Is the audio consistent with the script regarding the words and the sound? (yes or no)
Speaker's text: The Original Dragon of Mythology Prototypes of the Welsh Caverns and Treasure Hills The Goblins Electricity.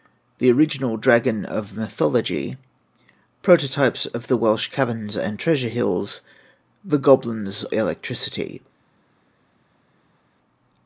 yes